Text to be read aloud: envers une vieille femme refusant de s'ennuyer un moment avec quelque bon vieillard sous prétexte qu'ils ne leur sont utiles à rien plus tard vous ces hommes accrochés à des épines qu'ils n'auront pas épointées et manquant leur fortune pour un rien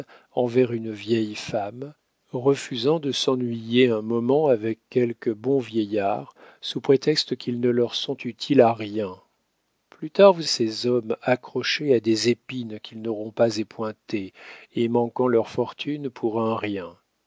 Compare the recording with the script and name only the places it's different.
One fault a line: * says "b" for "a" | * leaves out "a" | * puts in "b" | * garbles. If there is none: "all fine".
all fine